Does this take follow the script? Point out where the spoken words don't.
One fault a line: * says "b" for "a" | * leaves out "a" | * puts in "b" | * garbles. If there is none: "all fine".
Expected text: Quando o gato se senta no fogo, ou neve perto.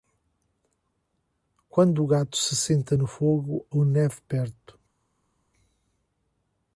all fine